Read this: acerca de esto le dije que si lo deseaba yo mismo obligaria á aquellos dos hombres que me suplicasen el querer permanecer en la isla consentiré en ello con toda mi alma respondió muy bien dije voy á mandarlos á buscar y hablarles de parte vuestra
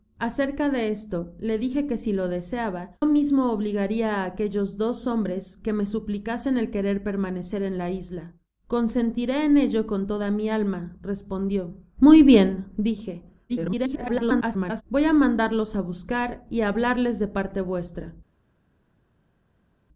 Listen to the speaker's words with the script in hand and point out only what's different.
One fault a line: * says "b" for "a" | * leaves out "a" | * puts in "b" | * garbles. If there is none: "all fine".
* leaves out "yo"
* garbles